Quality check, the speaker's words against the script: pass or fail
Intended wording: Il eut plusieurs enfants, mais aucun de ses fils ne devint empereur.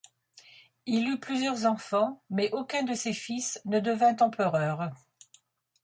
pass